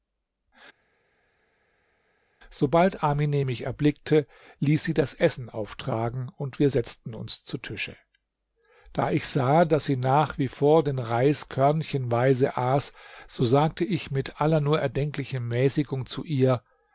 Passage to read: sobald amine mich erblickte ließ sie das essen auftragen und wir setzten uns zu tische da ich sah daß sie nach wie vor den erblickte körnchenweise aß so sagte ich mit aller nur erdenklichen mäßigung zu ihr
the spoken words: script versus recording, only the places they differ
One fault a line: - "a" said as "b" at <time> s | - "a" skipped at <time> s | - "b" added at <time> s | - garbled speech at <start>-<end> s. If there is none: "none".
- "erblickte" said as "reis" at 11.0 s